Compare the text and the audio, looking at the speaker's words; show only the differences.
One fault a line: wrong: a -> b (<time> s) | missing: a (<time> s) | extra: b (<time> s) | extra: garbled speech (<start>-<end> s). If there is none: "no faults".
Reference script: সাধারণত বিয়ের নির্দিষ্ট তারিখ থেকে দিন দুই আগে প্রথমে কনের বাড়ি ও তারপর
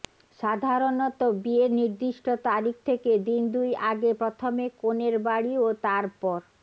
no faults